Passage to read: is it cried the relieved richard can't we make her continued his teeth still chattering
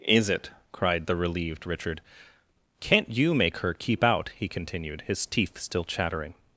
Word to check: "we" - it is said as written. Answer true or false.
false